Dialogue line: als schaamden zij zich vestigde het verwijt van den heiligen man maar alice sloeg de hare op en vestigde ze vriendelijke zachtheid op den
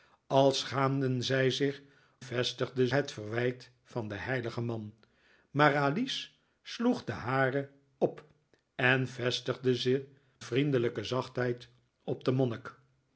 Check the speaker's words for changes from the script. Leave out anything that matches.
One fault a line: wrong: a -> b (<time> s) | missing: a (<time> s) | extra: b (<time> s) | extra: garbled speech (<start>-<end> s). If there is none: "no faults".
no faults